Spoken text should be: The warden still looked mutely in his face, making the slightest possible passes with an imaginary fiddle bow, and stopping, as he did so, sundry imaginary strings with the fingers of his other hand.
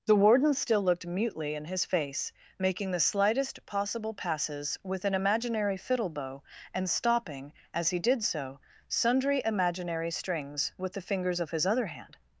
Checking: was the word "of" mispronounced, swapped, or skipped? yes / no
no